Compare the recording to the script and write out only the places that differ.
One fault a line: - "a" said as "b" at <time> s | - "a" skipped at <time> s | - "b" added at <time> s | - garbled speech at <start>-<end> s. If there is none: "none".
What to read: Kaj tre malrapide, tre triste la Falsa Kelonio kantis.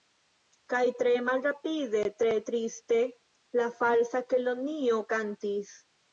none